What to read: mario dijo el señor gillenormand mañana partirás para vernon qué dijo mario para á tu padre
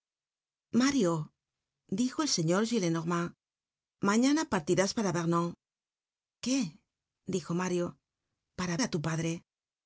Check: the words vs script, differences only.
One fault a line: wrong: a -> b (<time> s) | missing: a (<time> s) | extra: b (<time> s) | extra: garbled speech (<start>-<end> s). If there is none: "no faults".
no faults